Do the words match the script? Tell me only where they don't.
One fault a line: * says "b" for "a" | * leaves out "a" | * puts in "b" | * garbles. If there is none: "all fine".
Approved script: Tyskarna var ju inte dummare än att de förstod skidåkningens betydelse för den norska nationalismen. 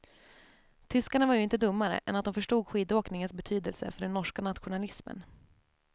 all fine